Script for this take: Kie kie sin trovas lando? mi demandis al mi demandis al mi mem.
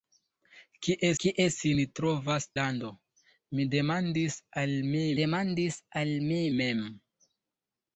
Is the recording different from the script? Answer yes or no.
no